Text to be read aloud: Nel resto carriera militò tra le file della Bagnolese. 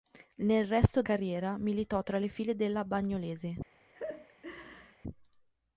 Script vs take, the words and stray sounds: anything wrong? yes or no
yes